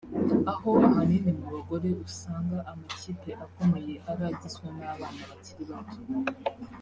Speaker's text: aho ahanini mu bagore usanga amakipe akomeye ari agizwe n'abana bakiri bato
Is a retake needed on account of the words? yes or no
no